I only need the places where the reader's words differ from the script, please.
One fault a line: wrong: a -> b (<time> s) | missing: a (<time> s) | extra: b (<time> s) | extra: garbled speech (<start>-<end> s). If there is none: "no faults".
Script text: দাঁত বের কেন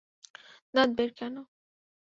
no faults